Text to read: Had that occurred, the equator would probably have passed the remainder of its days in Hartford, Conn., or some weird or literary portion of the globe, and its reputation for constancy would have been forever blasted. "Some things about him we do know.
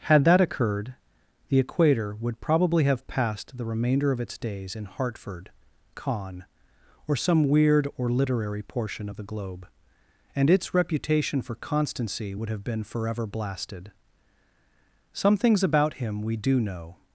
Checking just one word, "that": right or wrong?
right